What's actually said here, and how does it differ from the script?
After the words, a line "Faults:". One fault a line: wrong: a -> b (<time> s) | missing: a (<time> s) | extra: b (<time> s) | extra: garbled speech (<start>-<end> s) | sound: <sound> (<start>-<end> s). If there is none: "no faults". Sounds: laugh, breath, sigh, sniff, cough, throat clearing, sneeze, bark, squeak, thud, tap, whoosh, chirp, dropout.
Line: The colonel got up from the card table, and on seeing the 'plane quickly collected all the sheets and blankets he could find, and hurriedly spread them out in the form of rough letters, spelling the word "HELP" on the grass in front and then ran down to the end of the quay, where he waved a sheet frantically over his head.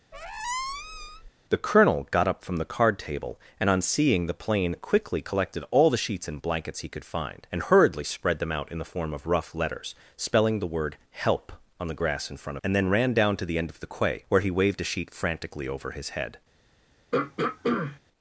The colonel got up from the card table, and on seeing the 'plane quickly collected all the sheets and blankets he could find, and hurriedly spread them out in the form of rough letters, spelling the word "HELP" on the grass in front and then ran down to the end of the quay, where he waved a sheet frantically over his head.
Faults:
sound: squeak (0.1-1.3 s)
sound: throat clearing (17.1-18.0 s)